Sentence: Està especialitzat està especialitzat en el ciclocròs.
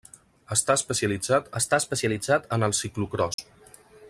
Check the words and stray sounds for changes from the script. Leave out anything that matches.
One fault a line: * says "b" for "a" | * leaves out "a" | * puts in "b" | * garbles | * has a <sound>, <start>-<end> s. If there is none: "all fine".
* has a dropout, 3.3-3.4 s